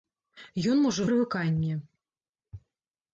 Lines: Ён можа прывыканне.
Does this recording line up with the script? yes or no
yes